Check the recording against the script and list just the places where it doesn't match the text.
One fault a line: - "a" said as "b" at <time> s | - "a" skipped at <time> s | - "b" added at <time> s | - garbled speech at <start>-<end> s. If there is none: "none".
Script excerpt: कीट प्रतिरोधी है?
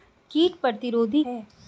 none